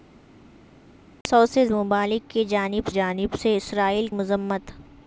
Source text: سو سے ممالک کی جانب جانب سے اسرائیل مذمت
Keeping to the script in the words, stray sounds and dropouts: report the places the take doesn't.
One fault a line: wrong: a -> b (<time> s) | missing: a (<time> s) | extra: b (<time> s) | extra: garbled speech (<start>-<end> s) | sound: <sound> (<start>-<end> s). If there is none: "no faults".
no faults